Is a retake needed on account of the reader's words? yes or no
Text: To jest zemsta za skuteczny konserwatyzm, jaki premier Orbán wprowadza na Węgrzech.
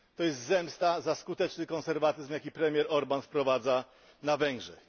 no